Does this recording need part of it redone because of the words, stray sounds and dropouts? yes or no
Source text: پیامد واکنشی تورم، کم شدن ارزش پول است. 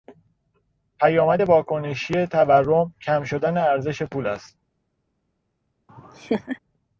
yes